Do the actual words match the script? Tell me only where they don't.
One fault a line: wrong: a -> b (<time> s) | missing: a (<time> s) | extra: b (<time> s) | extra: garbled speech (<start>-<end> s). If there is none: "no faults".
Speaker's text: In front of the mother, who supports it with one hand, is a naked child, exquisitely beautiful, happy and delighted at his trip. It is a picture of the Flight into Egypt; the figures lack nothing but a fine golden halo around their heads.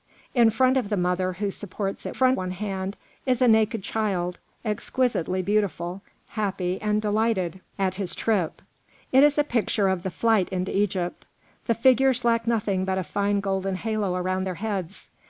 wrong: with -> front (2.1 s)